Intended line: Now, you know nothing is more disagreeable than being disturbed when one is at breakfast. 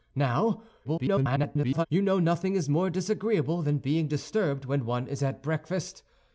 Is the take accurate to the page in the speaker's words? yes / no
no